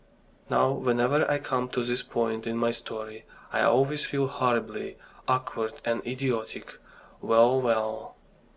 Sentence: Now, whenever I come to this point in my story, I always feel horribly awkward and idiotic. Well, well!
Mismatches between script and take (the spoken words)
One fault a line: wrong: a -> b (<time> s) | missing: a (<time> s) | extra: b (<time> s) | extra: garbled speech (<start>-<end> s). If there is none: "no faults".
no faults